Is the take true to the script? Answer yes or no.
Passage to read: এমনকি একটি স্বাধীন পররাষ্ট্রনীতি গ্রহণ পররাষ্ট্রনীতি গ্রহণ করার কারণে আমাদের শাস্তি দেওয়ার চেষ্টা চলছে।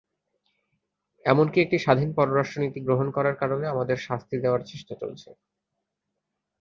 no